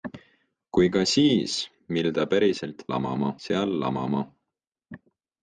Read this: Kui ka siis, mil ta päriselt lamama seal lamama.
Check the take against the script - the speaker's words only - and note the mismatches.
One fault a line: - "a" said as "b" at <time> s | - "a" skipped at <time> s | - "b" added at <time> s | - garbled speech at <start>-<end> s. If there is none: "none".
none